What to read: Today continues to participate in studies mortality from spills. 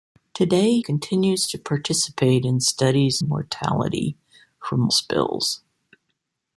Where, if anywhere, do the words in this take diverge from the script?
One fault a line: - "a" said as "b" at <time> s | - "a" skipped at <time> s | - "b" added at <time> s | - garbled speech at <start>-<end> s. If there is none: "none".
none